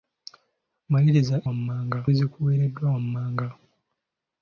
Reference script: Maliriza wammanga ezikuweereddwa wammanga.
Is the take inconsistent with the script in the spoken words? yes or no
no